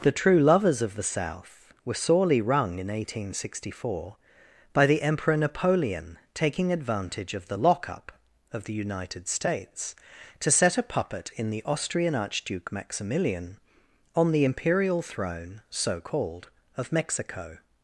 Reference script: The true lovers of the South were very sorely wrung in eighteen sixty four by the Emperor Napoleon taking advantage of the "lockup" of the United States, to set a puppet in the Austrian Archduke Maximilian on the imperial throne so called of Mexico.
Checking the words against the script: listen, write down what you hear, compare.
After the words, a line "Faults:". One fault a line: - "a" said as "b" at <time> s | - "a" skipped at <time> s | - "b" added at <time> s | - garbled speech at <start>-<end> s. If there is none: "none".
The true lovers of the South were sorely wrung in eighteen sixty four by the Emperor Napoleon taking advantage of the "lockup" of the United States, to set a puppet in the Austrian Archduke Maximilian on the imperial throne so called of Mexico.
Faults:
- "very" skipped at 1.9 s